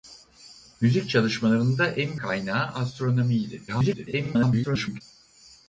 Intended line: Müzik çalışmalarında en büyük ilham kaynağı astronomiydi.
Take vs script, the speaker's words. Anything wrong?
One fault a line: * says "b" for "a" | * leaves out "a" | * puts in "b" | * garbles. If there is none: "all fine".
* leaves out "büyük ilham"
* garbles